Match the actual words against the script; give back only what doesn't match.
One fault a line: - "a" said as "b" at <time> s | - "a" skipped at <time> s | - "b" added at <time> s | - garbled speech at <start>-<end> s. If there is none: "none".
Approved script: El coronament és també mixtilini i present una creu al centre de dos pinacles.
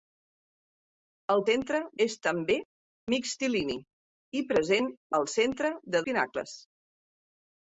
- "coronament" said as "centre" at 1.5 s
- "una creu" skipped at 4.9 s
- "dos" skipped at 6.0 s